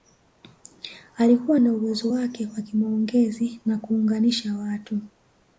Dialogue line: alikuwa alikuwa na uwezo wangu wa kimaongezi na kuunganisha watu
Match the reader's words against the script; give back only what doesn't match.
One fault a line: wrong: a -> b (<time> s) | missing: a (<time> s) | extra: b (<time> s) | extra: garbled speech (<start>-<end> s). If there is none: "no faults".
missing: alikuwa (1.6 s)
wrong: wangu -> wake (2.1 s)